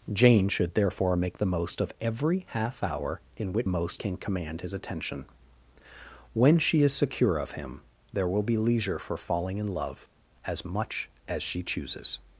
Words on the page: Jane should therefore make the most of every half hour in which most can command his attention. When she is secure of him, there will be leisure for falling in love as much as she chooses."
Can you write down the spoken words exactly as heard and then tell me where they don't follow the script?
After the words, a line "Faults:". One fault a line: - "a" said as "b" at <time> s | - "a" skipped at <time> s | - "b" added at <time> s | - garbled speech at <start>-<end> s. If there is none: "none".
Jane should therefore make the most of every half hour in which most can command his attention. When she is secure of him, there will be leisure for falling in love as much as she chooses."
Faults:
none